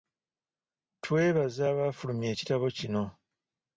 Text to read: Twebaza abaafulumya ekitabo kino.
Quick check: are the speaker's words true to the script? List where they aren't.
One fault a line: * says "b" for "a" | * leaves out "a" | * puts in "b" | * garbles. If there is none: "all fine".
all fine